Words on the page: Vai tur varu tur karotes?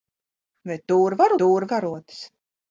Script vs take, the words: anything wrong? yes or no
no